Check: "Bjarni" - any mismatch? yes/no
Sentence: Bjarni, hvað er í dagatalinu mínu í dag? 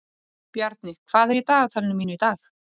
no